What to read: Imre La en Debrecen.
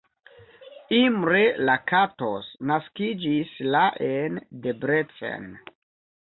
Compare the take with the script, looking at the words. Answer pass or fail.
fail